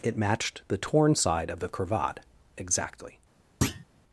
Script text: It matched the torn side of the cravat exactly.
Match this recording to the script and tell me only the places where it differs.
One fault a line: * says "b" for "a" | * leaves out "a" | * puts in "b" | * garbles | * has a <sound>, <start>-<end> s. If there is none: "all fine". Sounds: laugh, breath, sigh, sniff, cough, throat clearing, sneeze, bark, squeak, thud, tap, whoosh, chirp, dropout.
* has a thud, 3.6-3.8 s